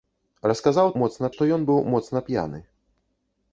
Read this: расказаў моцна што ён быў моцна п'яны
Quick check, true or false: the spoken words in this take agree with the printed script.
true